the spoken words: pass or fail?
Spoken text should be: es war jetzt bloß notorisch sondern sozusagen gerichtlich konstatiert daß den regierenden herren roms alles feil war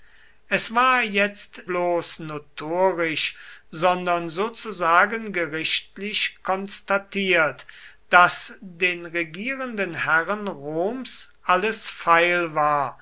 pass